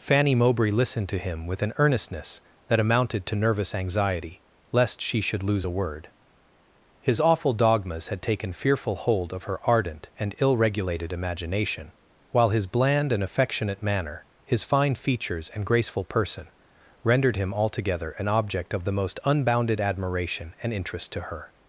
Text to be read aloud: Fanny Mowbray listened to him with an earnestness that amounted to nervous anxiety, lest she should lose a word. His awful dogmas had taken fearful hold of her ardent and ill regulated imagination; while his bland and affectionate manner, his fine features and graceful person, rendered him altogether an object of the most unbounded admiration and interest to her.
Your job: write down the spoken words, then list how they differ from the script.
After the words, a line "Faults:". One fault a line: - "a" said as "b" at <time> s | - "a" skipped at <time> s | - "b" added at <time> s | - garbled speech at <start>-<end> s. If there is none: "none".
Fanny Mowbray listened to him with an earnestness that amounted to nervous anxiety, lest she should lose a word. His awful dogmas had taken fearful hold of her ardent and ill regulated imagination; while his bland and affectionate manner, his fine features and graceful person, rendered him altogether an object of the most unbounded admiration and interest to her.
Faults:
none